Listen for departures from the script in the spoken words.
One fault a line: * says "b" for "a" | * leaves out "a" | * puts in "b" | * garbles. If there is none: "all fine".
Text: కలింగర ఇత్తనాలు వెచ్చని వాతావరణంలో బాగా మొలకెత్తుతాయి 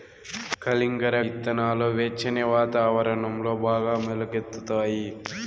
all fine